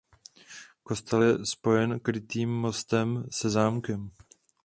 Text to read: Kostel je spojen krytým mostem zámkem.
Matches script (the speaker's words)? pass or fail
fail